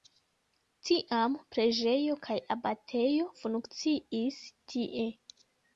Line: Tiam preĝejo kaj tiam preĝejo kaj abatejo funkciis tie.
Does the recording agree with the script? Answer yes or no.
no